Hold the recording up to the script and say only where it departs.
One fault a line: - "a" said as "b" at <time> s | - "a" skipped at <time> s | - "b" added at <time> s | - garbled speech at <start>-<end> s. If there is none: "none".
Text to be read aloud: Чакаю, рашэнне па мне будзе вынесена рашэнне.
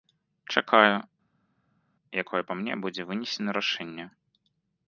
- "рашэнне" said as "якое" at 2.2 s